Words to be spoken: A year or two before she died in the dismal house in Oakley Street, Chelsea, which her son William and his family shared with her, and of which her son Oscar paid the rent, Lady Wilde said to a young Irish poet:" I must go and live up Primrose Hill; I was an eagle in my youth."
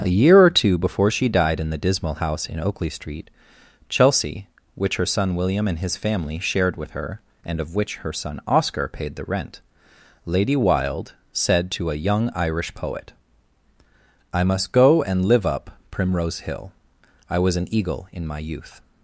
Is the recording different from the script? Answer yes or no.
no